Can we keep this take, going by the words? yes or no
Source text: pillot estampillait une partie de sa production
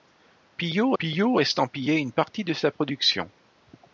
no